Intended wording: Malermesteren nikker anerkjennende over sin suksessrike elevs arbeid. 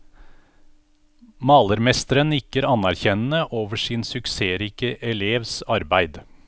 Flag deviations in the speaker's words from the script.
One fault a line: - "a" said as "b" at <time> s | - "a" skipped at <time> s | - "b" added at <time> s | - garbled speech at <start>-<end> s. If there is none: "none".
none